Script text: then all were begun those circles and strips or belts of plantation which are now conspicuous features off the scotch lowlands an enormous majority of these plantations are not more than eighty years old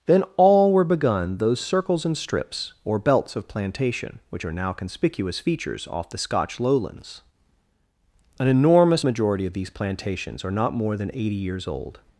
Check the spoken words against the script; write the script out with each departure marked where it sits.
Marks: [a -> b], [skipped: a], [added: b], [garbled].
then all were begun those circles and strips or belts of plantation which are now conspicuous features off the scotch lowlands an enormous majority of these plantations are not more than eighty years old